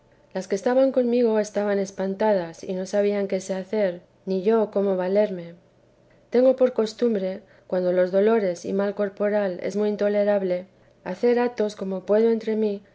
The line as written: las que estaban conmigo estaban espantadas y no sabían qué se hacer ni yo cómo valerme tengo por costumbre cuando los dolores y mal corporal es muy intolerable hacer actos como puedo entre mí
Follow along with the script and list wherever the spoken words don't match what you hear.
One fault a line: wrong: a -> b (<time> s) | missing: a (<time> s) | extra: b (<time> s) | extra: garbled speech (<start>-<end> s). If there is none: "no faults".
no faults